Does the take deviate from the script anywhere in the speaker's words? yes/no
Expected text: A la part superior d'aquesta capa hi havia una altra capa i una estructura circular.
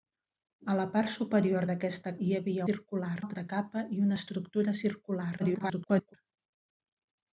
yes